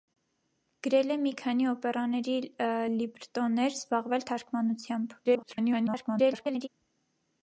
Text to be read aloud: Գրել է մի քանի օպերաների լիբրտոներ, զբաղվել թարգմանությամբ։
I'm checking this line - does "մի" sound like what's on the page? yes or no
yes